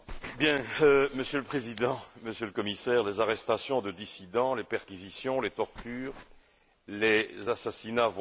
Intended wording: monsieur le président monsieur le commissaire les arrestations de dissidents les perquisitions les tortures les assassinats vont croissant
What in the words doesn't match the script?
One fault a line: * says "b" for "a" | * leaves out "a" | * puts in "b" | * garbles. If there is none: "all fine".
all fine